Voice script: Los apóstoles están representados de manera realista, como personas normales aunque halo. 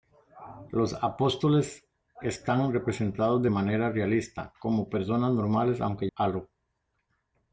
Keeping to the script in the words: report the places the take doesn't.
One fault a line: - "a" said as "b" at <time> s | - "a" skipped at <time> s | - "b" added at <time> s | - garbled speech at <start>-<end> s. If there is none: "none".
none